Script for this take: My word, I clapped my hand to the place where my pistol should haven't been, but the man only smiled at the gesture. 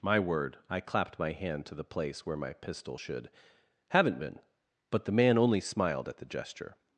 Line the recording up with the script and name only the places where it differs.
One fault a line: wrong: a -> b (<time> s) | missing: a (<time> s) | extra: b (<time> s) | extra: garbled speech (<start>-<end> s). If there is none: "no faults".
no faults